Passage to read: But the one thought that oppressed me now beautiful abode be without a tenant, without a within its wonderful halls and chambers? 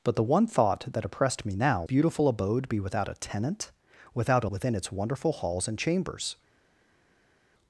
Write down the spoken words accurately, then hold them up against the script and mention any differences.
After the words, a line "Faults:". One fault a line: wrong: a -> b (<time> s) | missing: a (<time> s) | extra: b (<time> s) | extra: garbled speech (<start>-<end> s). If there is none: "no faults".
But the one thought that oppressed me now beautiful abode be without a tenant, without a within its wonderful halls and chambers?
Faults:
no faults